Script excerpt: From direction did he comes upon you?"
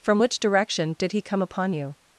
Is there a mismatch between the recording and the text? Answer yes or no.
yes